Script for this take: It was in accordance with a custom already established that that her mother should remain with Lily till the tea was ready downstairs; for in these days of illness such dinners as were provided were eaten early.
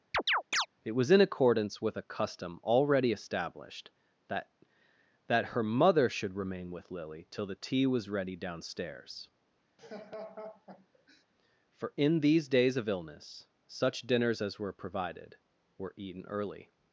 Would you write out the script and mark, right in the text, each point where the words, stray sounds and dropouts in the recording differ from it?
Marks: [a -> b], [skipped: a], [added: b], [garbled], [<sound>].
[chirp] It was in accordance with a custom already established that that her mother should remain with Lily till the tea was ready downstairs; [laugh] for in these days of illness such dinners as were provided were eaten early.